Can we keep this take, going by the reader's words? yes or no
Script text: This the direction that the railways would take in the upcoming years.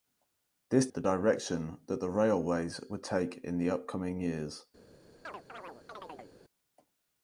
yes